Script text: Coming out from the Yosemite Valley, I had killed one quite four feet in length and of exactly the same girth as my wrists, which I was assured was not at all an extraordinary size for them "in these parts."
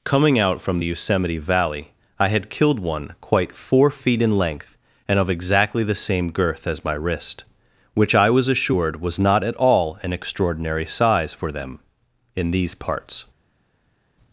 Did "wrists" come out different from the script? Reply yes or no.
yes